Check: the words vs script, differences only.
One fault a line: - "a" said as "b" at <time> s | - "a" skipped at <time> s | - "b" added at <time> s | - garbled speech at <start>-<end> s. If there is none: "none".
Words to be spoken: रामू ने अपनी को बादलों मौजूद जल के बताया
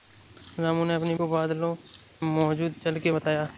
none